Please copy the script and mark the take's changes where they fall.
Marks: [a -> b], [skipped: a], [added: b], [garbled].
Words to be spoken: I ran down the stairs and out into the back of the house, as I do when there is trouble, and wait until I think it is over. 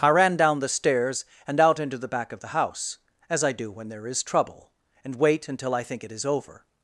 I ran down the stairs and out into the back of the house, as I do when there is trouble, and wait until I think it is over.